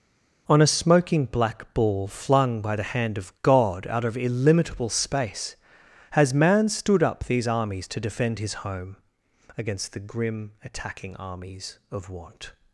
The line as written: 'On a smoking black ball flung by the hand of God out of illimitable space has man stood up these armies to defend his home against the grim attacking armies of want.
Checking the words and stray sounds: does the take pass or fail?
pass